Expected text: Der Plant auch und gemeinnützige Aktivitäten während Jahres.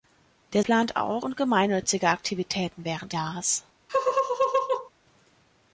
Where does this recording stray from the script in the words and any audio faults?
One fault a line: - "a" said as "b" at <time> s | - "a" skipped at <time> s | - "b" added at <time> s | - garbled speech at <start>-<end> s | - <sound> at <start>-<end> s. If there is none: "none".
- laugh at 3.9-4.9 s